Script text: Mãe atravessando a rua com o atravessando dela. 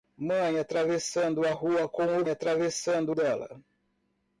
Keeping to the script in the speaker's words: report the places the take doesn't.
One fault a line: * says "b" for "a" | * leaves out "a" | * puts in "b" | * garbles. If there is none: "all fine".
all fine